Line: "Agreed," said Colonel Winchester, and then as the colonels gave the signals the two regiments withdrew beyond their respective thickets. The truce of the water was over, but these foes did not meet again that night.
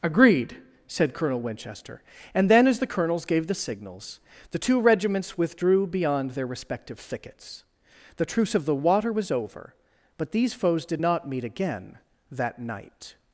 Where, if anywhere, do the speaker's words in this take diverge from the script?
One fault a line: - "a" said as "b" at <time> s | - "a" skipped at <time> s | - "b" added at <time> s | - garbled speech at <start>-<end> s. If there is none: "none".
none